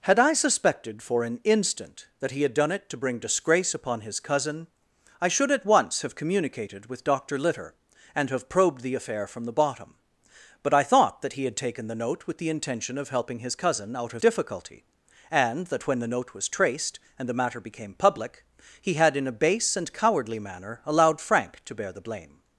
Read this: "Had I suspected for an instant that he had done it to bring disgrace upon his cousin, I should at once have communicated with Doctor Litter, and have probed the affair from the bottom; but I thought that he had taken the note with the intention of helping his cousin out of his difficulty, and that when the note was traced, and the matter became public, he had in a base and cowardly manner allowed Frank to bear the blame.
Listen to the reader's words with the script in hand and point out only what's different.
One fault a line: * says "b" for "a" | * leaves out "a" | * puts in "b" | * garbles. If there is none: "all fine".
* leaves out "his"